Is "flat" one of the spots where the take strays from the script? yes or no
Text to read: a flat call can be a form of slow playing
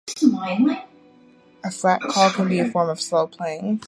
no